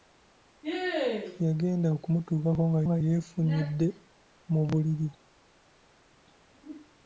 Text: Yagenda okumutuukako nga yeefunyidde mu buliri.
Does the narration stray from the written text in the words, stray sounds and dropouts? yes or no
yes